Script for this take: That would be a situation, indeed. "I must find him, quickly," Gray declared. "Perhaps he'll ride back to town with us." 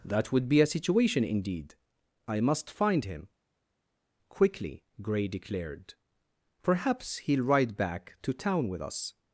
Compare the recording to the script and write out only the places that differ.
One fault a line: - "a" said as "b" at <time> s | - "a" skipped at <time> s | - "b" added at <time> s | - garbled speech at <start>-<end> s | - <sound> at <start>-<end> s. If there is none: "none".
none